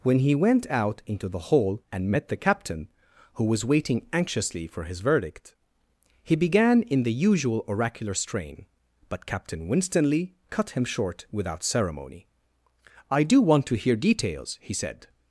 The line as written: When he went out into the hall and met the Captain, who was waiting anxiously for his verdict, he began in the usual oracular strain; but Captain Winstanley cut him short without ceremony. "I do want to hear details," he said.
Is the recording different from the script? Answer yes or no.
no